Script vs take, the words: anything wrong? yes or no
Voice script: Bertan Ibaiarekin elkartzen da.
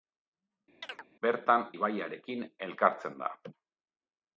no